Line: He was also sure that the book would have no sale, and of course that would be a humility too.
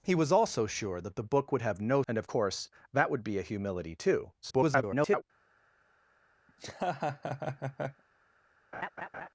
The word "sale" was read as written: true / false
false